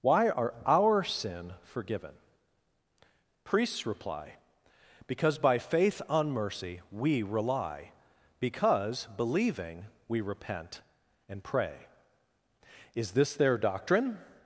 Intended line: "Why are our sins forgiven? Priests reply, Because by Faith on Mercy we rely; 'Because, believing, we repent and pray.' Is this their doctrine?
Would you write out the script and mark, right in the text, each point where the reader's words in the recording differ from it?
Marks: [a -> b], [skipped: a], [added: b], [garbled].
"Why are our [sins -> sin] forgiven? Priests reply, Because by Faith on Mercy we rely; 'Because, believing, we repent and pray.' Is this their doctrine?